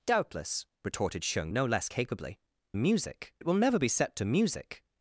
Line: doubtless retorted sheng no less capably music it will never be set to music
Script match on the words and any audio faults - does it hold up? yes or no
yes